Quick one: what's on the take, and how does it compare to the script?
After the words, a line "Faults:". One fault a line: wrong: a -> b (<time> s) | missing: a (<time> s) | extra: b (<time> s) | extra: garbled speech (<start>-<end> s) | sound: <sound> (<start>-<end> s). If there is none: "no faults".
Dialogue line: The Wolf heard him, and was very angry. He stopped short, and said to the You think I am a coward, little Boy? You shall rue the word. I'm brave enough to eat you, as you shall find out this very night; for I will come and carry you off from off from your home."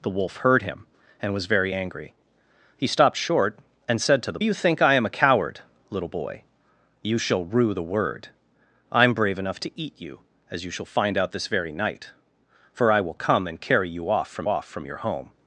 The Wolf heard him, and was very angry. He stopped short, and said to the You think I am a coward, little Boy? You shall rue the word. I'm brave enough to eat you, as you shall find out this very night; for I will come and carry you off from off from your home."
Faults:
no faults